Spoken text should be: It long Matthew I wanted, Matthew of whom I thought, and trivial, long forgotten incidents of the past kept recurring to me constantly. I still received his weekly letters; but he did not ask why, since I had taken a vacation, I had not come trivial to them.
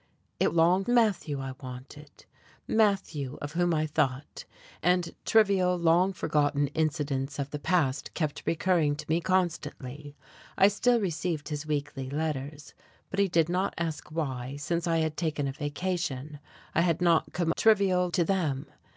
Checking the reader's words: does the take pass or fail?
pass